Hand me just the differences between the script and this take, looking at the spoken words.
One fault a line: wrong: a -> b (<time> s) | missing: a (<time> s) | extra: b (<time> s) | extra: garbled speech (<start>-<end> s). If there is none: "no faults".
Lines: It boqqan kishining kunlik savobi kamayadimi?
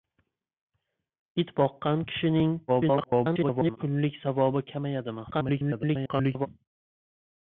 extra: garbled speech (2.7-3.8 s)
extra: garbled speech (5.3-6.5 s)